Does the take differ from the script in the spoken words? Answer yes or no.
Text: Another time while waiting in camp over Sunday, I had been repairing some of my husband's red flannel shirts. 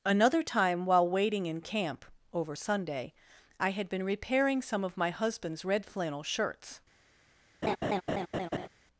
no